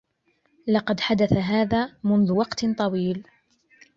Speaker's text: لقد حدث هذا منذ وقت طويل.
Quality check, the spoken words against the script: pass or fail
pass